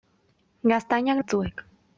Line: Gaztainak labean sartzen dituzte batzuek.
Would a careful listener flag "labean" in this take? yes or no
yes